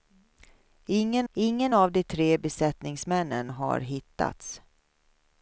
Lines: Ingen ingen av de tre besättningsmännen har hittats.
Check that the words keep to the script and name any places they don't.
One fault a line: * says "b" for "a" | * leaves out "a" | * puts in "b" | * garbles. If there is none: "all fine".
all fine